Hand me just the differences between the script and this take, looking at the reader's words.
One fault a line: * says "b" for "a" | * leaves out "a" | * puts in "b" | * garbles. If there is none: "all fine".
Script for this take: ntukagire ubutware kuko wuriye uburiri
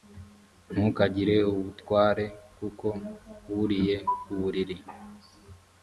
all fine